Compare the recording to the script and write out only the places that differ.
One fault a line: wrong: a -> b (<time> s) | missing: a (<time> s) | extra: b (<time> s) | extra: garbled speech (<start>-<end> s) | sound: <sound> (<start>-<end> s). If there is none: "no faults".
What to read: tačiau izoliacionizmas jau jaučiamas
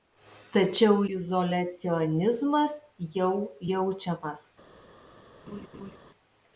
sound: laugh (5.5-6.0 s)